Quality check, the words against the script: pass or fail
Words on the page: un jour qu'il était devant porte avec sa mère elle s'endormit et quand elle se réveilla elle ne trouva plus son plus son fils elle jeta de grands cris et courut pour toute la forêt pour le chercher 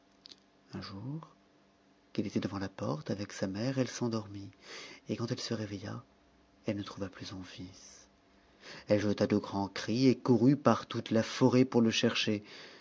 fail